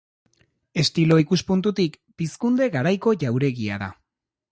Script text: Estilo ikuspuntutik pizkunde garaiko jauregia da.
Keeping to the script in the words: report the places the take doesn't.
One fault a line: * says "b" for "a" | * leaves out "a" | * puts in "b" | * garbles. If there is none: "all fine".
all fine